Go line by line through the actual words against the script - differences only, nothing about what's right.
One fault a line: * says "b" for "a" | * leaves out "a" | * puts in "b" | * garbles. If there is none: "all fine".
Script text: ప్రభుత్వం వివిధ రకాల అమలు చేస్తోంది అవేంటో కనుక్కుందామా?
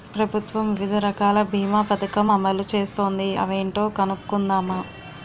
* puts in "బీమా పదకం"